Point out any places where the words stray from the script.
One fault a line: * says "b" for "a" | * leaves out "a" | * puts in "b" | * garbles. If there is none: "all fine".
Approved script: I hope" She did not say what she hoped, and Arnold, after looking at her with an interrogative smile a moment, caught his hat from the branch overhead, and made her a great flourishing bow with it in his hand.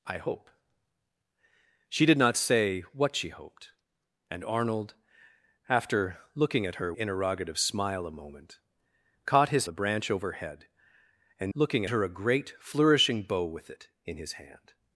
* leaves out "with an"
* leaves out "hat from"
* says "looking" for "made"